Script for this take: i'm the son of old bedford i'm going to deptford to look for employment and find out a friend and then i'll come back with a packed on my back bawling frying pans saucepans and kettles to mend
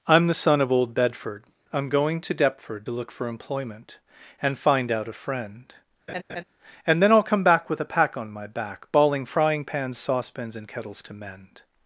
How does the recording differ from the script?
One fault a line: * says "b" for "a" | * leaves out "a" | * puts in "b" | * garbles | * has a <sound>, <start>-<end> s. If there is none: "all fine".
* has a laugh, 6.1-6.4 s
* says "pack" for "packed"